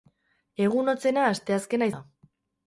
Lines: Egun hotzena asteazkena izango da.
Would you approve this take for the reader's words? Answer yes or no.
no